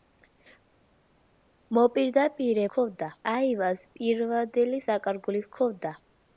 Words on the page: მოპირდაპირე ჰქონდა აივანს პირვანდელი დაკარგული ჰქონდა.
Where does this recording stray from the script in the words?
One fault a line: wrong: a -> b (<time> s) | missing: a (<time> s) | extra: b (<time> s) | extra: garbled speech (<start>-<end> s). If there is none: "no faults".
no faults